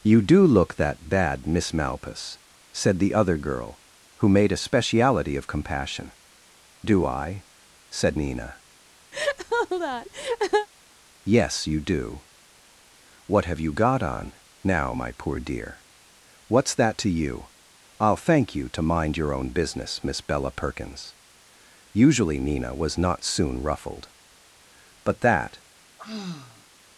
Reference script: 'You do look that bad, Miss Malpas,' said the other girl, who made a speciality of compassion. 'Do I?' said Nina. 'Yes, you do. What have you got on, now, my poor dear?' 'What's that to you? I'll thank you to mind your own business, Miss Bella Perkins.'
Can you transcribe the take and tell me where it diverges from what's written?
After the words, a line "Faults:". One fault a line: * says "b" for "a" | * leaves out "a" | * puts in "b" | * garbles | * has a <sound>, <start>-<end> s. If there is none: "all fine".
'You do look that bad, Miss Malpas,' said the other girl, who made a speciality of compassion. 'Do I?' said Nina. 'Yes, you do. What have you got on, now, my poor dear?' 'What's that to you? I'll thank you to mind your own business, Miss Bella Perkins.' Usually Nina was not soon ruffled; but that
Faults:
* has a laugh, 9.1-10.7 s
* puts in "Usually Nina was not soon ruffled but that"
* has a sigh, 26.0-26.7 s